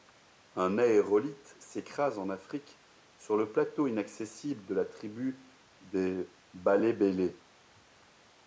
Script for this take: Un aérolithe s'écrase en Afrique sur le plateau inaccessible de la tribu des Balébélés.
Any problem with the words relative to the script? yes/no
no